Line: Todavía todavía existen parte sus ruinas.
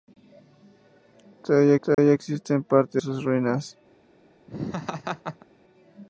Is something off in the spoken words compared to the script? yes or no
no